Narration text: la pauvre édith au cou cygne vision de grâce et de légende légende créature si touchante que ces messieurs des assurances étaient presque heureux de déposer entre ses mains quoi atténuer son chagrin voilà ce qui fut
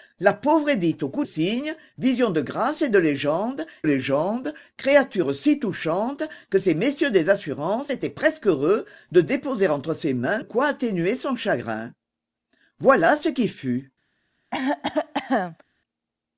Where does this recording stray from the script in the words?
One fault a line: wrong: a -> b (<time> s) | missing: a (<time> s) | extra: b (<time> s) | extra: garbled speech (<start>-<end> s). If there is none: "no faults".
no faults